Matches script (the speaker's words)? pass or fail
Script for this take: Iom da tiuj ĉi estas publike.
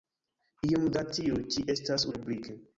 pass